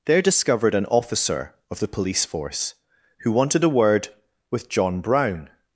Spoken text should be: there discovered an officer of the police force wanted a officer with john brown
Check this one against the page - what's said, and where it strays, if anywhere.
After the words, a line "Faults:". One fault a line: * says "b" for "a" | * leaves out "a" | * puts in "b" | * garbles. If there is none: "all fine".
there discovered an officer of the police force who wanted a word with john brown
Faults:
* puts in "who"
* says "word" for "officer"